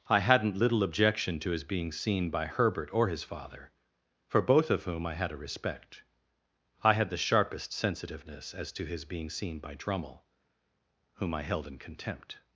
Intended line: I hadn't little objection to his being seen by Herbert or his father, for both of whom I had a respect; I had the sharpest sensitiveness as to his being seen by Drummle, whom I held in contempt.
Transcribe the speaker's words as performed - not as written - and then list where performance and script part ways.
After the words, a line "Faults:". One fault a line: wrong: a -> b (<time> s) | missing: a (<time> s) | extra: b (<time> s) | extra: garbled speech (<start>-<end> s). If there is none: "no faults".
I hadn't little objection to his being seen by Herbert or his father, for both of whom I had a respect; I had the sharpest sensitiveness as to his being seen by Drummle, whom I held in contempt.
Faults:
no faults